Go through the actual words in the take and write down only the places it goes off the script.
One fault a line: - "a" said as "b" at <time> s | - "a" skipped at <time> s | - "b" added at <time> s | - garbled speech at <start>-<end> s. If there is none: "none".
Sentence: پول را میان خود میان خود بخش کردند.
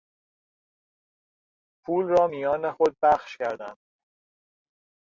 - "میان خود" skipped at 3.0 s